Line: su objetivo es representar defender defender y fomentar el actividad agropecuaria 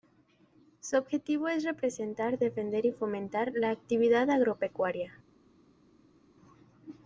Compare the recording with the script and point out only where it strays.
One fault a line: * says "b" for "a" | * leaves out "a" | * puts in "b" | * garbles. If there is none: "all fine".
* leaves out "defender"
* says "la" for "el"